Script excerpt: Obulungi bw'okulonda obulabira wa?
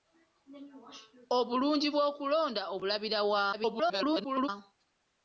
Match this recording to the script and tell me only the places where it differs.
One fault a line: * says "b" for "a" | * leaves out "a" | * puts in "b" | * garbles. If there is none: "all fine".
* garbles